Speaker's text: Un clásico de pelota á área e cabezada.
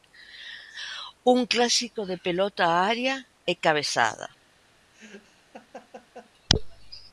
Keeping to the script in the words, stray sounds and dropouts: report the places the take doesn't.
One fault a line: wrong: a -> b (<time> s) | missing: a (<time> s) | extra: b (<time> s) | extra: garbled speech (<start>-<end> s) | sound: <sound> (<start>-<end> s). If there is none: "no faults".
sound: laugh (4.9-6.3 s)